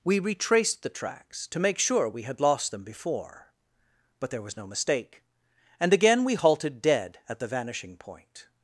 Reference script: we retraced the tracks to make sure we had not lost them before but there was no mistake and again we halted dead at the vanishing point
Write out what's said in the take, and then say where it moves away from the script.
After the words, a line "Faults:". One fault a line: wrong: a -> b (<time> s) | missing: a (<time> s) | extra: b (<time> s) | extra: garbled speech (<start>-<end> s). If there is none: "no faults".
we retraced the tracks to make sure we had lost them before but there was no mistake and again we halted dead at the vanishing point
Faults:
missing: not (2.4 s)